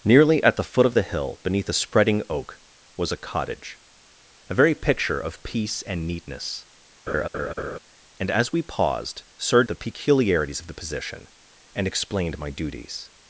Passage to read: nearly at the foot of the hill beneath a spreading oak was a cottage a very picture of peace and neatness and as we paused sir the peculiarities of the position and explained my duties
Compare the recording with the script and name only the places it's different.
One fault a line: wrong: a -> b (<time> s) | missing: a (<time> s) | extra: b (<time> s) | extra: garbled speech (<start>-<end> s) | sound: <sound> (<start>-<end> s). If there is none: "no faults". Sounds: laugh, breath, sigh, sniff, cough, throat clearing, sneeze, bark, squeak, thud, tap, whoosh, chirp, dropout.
sound: laugh (7.1-7.8 s)